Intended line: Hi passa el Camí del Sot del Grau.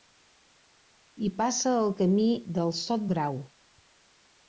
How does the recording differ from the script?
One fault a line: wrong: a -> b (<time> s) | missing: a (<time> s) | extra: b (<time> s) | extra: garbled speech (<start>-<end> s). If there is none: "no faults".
missing: del (3.1 s)